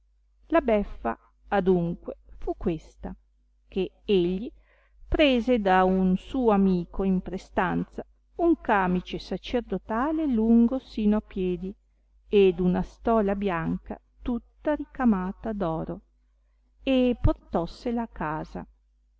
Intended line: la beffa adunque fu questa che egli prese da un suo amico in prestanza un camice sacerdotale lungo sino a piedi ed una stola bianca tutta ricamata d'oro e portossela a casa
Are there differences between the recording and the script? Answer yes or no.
no